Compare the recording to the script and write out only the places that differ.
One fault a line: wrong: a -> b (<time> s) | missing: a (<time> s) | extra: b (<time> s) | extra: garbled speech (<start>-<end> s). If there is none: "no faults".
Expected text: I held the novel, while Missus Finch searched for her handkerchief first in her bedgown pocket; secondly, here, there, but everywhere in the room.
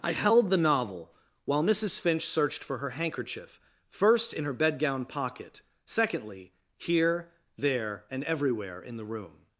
wrong: but -> and (8.1 s)